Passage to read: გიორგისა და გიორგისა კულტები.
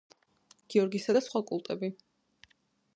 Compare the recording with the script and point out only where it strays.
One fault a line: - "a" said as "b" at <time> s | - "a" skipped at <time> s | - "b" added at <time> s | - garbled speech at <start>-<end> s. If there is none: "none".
- "გიორგისა" said as "სხვა" at 1.3 s